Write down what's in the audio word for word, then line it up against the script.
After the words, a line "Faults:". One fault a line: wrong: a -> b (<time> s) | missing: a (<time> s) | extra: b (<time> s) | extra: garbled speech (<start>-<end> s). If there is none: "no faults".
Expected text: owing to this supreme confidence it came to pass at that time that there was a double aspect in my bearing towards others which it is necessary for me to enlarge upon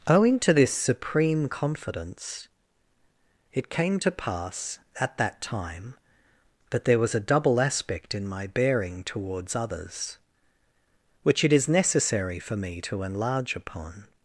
owing to this supreme confidence it came to pass at that time that there was a double aspect in my bearing towards others which it is necessary for me to enlarge upon
Faults:
no faults